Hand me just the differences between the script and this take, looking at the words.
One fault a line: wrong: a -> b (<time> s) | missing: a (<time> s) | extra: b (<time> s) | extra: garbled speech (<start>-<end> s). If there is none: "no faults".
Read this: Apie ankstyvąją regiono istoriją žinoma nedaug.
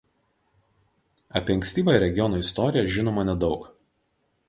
no faults